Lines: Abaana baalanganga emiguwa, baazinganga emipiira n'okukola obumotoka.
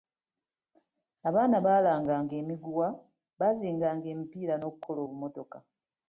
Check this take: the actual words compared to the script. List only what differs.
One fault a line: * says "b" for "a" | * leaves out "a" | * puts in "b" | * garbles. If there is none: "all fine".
all fine